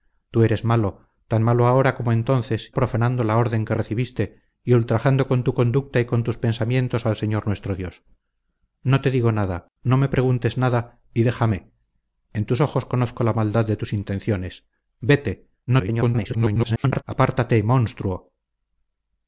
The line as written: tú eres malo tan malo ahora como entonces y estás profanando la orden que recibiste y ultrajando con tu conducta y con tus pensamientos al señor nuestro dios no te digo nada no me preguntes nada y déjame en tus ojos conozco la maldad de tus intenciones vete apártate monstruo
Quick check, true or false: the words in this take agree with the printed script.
false